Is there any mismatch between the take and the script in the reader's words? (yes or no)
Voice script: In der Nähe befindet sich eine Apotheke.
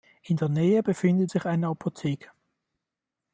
no